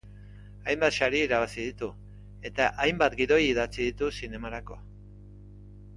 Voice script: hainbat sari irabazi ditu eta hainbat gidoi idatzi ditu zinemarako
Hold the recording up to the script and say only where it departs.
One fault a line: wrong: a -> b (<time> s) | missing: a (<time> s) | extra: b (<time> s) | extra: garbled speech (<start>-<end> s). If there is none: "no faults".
no faults